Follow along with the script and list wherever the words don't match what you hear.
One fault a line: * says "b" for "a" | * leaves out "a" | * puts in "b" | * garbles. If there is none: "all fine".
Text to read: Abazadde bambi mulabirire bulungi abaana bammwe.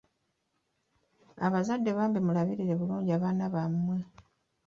all fine